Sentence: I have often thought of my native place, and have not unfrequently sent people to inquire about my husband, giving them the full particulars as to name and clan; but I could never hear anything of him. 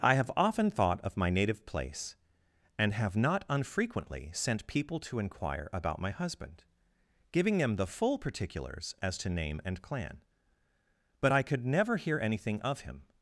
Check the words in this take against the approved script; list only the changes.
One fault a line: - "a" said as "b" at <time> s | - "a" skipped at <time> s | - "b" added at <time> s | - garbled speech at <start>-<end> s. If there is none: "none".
none